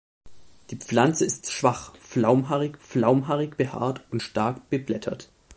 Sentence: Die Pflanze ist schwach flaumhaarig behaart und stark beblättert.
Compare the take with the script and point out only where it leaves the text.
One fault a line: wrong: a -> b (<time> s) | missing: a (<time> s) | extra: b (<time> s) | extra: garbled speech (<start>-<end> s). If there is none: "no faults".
extra: flaumhaarig (2.8 s)